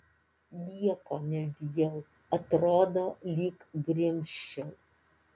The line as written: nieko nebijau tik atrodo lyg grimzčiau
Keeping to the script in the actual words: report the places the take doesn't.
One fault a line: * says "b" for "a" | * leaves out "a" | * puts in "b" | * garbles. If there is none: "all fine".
* leaves out "tik"